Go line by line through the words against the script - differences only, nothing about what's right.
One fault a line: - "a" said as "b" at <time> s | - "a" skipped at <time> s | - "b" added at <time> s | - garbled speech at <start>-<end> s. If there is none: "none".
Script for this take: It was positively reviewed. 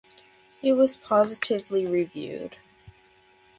none